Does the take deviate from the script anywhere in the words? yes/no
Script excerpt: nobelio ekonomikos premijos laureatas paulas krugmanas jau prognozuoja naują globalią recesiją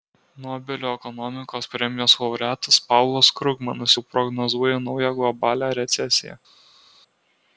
no